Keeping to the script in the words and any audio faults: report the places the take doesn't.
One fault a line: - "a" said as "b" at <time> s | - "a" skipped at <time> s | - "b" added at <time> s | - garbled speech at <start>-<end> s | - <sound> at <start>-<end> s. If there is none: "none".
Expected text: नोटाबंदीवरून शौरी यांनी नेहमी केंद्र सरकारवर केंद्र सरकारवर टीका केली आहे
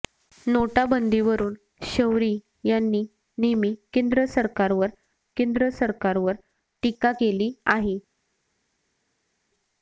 none